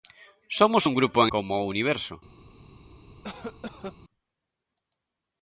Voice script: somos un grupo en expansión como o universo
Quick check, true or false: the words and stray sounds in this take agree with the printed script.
false